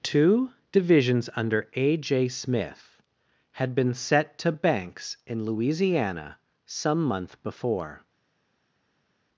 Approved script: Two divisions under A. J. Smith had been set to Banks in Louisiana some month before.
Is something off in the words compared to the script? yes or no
no